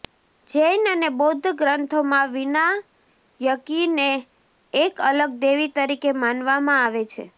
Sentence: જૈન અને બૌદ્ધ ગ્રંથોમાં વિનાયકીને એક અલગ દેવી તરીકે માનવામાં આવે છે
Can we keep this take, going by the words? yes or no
yes